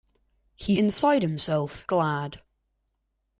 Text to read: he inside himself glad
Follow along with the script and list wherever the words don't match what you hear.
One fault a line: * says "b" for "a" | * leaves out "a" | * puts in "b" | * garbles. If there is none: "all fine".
all fine